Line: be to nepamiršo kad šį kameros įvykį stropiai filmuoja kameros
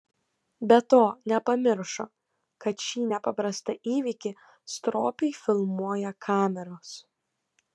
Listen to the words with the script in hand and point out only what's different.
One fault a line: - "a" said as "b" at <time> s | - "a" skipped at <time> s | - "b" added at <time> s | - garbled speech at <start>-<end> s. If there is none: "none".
- "kameros" said as "nepaprastą" at 3.1 s